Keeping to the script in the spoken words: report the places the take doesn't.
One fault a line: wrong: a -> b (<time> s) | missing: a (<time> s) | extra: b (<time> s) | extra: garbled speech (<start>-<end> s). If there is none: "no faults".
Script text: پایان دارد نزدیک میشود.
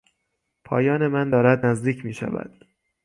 extra: من (1.1 s)